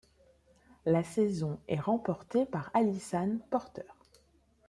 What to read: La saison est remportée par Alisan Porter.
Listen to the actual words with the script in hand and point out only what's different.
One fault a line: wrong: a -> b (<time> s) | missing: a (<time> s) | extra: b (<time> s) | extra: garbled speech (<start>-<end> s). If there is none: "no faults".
no faults